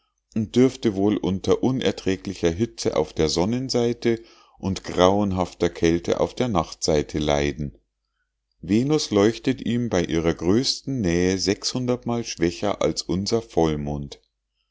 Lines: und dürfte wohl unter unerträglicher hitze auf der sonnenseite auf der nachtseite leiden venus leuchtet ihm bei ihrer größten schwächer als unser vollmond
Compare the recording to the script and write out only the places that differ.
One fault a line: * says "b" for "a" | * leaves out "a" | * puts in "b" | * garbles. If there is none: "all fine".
* puts in "und grauenhafter kälte"
* puts in "nähe mal"